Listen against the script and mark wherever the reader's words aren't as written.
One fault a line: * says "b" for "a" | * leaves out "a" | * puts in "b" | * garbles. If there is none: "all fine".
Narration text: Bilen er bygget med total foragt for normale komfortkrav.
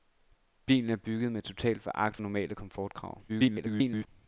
* leaves out "for"
* garbles